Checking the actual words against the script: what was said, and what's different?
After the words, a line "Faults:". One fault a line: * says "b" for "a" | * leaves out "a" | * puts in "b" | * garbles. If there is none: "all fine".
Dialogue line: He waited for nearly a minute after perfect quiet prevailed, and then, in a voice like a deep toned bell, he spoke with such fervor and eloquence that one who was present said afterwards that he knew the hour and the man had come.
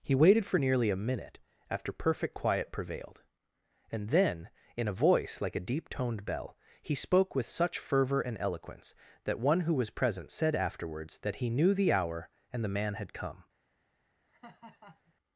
He waited for nearly a minute after perfect quiet prevailed, and then, in a voice like a deep toned bell, he spoke with such fervor and eloquence that one who was present said afterwards that he knew the hour and the man had come.
Faults:
all fine